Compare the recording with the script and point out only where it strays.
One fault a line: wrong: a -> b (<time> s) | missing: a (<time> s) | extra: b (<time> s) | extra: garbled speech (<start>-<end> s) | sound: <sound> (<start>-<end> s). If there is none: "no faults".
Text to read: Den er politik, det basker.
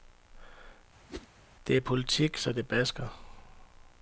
sound: whoosh (1.1-1.3 s)
wrong: Den -> Det (1.7 s)
extra: så (2.4 s)